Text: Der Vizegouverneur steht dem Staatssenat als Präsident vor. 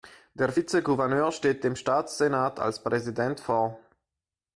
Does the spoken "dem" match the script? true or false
true